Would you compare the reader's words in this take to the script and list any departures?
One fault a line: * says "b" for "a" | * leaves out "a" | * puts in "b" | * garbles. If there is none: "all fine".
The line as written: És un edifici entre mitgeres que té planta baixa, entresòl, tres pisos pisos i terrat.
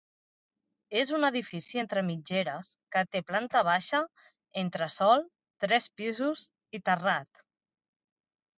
* leaves out "pisos"